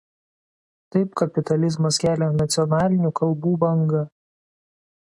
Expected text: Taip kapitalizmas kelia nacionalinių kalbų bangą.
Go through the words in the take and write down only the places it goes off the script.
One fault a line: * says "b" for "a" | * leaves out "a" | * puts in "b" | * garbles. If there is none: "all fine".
all fine